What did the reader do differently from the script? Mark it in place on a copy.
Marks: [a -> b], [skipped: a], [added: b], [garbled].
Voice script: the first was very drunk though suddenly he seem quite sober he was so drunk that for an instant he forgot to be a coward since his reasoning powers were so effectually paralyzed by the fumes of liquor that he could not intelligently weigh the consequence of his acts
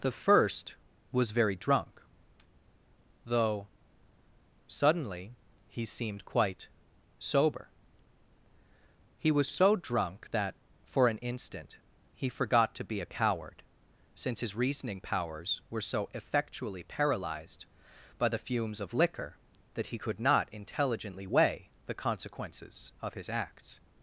the first was very drunk though suddenly he [seem -> seemed] quite sober he was so drunk that for an instant he forgot to be a coward since his reasoning powers were so effectually paralyzed by the fumes of liquor that he could not intelligently weigh the [consequence -> consequences] of his acts